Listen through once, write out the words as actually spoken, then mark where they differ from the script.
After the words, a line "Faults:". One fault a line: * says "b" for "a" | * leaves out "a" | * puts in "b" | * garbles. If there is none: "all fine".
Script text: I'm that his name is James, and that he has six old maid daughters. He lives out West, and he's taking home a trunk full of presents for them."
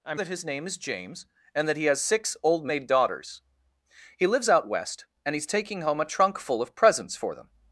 I'm that his name is James, and that he has six old maid daughters. He lives out West, and he's taking home a trunk full of presents for them."
Faults:
all fine